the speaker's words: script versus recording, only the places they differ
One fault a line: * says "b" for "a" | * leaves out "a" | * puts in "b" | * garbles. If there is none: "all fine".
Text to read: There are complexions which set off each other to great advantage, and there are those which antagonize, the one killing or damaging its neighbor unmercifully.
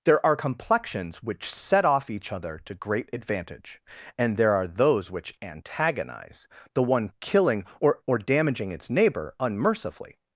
* puts in "or"